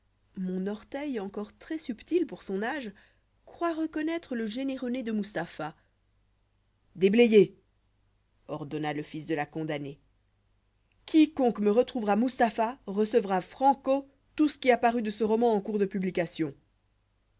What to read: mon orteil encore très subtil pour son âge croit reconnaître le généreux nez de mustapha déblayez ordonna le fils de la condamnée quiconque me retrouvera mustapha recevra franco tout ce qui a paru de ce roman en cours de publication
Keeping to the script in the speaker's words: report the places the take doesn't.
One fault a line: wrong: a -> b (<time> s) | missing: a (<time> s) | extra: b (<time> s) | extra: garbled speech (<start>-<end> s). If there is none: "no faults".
no faults